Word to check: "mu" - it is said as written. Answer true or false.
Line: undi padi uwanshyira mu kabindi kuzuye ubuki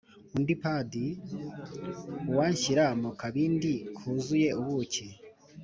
true